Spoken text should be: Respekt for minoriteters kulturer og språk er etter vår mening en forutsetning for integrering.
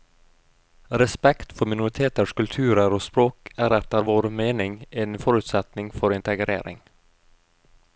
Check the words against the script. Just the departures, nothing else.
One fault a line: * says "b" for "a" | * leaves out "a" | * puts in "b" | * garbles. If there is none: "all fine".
all fine